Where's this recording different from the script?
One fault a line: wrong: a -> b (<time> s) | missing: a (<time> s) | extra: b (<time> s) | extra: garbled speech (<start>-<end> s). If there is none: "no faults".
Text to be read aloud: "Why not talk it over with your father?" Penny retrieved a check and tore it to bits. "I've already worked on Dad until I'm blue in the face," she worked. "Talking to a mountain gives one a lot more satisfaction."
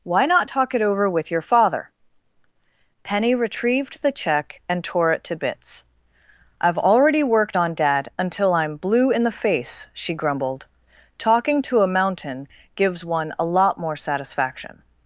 wrong: a -> the (4.0 s)
wrong: worked -> grumbled (10.1 s)